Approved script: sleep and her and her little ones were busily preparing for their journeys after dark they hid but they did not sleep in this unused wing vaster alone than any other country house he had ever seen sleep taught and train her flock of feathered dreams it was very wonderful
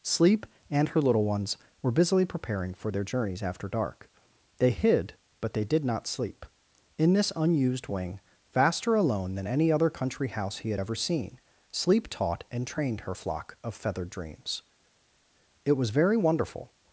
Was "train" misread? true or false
true